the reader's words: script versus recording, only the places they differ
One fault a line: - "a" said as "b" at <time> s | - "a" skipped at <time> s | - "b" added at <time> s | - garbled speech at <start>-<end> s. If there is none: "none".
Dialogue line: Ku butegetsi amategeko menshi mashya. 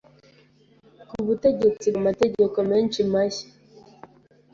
none